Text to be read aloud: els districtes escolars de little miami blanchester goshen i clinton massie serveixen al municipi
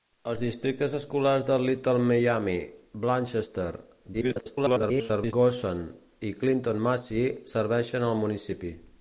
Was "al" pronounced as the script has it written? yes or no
yes